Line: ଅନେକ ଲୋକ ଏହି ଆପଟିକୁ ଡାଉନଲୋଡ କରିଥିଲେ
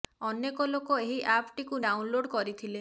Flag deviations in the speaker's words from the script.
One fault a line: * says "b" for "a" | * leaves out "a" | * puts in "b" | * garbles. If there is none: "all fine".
all fine